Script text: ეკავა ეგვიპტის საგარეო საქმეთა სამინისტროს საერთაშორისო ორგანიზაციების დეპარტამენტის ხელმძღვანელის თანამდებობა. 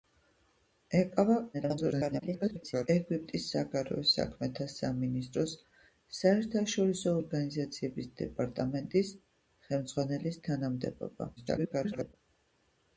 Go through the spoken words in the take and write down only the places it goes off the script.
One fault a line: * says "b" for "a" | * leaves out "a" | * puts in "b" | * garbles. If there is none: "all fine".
* garbles
* garbles